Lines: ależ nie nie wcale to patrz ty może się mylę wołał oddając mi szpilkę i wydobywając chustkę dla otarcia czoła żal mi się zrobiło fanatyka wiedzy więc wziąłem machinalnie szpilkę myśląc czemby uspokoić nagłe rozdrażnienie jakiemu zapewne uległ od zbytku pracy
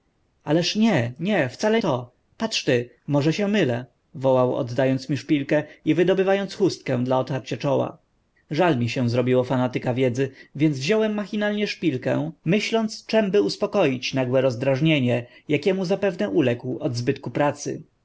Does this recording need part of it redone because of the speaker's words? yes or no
no